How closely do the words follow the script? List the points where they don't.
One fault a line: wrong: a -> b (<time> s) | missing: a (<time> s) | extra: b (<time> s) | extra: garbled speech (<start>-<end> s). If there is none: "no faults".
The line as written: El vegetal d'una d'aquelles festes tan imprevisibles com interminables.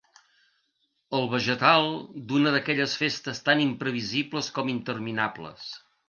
no faults